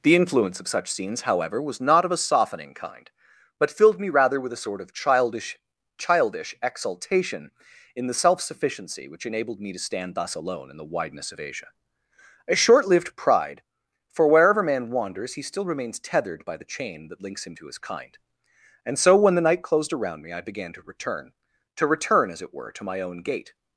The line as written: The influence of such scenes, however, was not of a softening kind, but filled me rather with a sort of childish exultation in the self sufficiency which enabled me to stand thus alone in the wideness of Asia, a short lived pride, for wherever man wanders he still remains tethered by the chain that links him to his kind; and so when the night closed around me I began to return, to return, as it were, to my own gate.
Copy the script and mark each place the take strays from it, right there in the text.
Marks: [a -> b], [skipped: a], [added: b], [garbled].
The influence of such scenes, however, was not of a softening kind, but filled me rather with a sort of childish [added: childish] exultation in the self sufficiency which enabled me to stand thus alone in the wideness of Asia, a short lived pride, for wherever man wanders he still remains tethered by the chain that links him to his kind; and so when the night closed around me I began to return, to return, as it were, to my own gate.